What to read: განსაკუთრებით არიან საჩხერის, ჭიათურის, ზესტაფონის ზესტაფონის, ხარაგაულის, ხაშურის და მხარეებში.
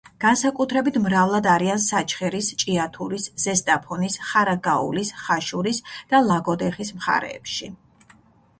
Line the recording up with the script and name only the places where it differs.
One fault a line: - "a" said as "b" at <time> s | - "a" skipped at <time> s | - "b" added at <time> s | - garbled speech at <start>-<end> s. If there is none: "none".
- "მრავლად" added at 1.0 s
- "ზესტაფონის" skipped at 4.2 s
- "ლაგოდეხის" added at 6.3 s